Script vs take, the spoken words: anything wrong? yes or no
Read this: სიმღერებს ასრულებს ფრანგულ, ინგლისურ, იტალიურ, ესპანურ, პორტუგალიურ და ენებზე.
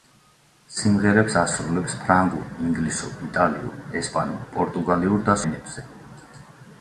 no